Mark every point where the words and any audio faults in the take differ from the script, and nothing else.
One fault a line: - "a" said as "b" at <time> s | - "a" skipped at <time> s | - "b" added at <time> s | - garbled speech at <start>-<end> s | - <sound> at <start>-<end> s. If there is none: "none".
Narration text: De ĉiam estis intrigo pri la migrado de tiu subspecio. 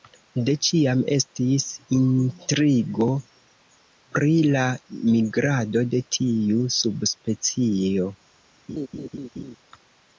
- laugh at 8.7-9.6 s